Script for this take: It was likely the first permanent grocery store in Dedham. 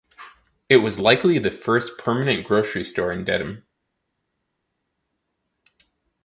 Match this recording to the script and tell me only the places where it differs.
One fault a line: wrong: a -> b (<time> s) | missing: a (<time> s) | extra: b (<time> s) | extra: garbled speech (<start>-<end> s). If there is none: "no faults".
no faults